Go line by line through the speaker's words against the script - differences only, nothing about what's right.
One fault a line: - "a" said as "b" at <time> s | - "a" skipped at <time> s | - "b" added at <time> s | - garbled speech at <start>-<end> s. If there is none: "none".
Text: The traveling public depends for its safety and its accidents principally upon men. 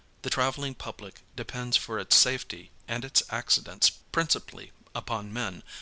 none